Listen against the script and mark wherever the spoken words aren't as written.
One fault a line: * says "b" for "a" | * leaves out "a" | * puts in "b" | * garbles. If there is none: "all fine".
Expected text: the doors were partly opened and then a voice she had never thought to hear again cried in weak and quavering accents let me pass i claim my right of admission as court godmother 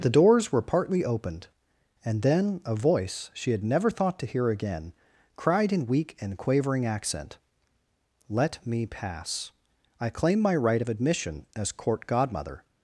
* says "accent" for "accents"